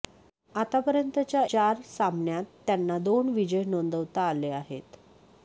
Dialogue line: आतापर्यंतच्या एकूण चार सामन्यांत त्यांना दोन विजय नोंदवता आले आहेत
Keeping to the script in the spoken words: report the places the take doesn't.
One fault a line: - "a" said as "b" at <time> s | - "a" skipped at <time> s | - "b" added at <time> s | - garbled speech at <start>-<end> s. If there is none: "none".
- "एकूण" skipped at 1.4 s